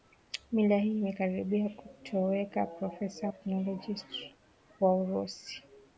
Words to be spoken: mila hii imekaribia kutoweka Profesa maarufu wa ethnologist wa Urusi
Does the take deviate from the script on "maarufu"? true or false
true